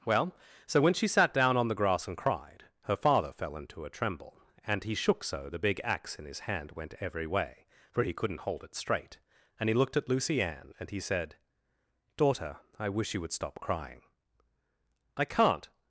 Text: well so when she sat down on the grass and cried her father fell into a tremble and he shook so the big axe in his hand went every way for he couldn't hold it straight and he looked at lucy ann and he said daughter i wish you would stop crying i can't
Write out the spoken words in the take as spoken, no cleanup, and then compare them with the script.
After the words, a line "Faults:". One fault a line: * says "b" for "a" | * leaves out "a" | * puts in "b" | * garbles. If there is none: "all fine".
well so when she sat down on the grass and cried her father fell into a tremble and he shook so the big axe in his hand went every way for he couldn't hold it straight and he looked at lucy ann and he said daughter i wish you would stop crying i can't
Faults:
all fine